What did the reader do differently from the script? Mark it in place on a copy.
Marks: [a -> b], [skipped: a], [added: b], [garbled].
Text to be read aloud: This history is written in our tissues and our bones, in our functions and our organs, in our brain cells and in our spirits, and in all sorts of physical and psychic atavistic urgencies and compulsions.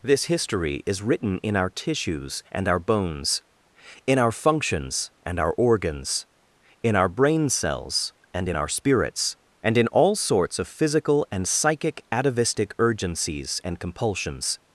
This history is written in our tissues and our bones, in our functions and our organs, in our brain cells and in our spirits, and in all sorts of physical and psychic atavistic urgencies and compulsions.